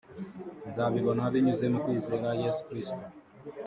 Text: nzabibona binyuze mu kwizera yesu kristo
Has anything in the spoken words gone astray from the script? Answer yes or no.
no